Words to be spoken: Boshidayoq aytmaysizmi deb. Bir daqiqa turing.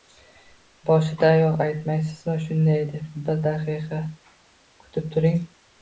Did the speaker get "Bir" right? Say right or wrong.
right